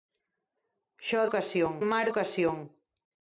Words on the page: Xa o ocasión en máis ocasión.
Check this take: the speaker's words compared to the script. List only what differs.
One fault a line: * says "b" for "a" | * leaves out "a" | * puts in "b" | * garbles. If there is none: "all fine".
all fine